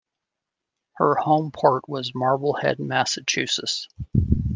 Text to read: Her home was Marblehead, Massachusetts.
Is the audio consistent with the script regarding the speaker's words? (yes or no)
no